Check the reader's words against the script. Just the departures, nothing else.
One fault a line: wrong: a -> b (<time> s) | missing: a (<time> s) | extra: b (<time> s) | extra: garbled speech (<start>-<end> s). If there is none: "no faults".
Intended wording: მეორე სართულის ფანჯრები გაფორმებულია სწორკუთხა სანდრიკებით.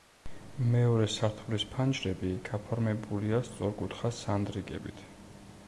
no faults